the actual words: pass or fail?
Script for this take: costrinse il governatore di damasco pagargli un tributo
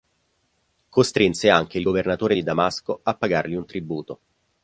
fail